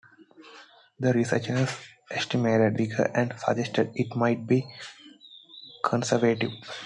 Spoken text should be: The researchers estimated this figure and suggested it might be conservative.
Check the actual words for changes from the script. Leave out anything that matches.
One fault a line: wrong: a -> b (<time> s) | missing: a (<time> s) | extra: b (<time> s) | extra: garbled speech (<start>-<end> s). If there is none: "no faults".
missing: this (2.8 s)